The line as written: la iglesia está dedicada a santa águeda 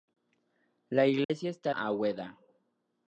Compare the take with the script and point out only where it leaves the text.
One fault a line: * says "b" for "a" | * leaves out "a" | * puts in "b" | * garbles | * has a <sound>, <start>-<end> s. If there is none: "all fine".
* has a dropout, 1.2-1.3 s
* leaves out "dedicada a santa"